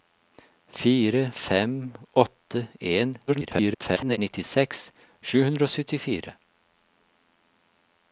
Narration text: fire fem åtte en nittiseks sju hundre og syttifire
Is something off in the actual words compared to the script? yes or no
yes